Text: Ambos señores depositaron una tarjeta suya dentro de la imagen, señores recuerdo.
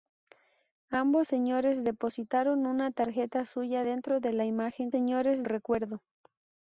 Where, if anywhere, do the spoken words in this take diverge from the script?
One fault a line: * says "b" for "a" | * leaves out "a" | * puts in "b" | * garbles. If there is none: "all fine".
all fine